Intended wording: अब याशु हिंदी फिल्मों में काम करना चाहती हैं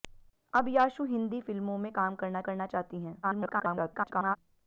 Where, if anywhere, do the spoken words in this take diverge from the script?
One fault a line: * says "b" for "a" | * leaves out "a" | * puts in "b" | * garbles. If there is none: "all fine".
* puts in "करना"
* garbles